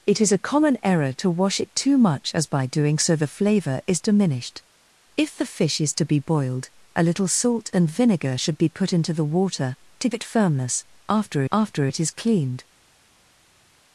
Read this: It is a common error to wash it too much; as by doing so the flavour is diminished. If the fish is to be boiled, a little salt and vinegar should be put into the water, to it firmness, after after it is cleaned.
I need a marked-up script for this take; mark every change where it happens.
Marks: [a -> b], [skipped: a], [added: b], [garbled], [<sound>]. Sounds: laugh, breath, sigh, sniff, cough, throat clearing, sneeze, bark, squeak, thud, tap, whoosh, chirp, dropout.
It is a common error to wash it too much; as by doing so the flavour is diminished. If the fish is to be boiled, a little salt and vinegar should be put into the water, to it firmness, after after it is cleaned.